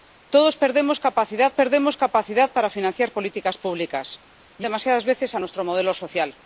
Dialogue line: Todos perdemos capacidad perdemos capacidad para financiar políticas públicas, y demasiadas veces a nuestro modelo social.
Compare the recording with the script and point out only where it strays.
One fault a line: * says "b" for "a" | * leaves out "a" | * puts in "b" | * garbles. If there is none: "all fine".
all fine